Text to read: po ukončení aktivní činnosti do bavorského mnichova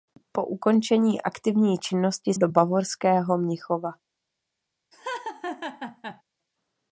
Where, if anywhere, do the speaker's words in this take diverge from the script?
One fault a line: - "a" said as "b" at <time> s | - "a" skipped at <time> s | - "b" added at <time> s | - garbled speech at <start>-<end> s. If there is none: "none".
none